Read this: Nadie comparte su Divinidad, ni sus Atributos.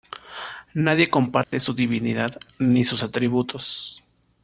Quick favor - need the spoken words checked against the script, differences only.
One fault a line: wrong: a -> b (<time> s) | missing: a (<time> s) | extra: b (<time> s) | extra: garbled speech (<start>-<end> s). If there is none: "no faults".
no faults